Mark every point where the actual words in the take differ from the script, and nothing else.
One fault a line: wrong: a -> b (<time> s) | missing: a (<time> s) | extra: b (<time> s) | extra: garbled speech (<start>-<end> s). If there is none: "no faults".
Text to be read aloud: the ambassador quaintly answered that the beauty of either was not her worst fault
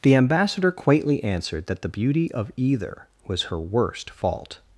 missing: not (3.4 s)